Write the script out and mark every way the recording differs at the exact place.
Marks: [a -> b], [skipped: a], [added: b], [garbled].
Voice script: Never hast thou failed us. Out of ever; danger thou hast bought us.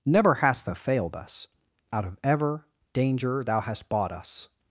Never hast thou failed us. Out of ever; danger thou hast bought us.